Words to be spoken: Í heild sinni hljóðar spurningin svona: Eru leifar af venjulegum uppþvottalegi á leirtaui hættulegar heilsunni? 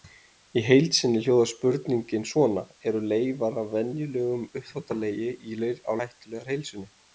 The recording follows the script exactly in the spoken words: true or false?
false